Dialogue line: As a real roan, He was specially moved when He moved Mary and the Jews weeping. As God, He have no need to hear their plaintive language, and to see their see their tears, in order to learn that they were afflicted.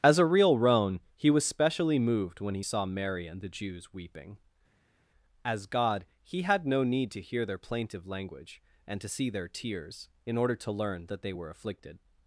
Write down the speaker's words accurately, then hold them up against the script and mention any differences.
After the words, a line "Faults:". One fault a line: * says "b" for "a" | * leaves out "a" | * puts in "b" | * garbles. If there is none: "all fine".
As a real roan, He was specially moved when He saw Mary and the Jews weeping. As God, He had no need to hear their plaintive language, and to see their tears, in order to learn that they were afflicted.
Faults:
* says "saw" for "moved"
* says "had" for "have"
* leaves out "see their"